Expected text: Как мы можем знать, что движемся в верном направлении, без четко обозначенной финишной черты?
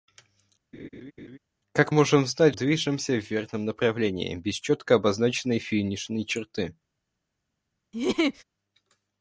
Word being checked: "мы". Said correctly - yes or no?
no